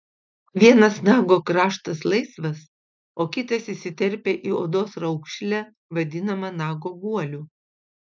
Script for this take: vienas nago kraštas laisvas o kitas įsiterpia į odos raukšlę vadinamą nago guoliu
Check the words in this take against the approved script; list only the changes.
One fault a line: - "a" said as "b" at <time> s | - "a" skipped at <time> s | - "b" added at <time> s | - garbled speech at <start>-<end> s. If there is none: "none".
none